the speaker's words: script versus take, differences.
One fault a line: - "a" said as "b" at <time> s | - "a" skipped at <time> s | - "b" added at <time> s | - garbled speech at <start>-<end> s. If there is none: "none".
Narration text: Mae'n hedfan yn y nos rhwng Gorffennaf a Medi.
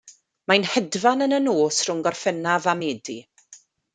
none